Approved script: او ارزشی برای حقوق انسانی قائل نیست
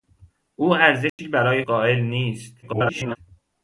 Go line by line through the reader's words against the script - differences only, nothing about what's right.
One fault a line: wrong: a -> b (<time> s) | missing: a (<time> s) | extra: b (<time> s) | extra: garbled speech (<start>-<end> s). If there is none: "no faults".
missing: حقوق انسانی (1.6 s)
extra: garbled speech (2.6-3.2 s)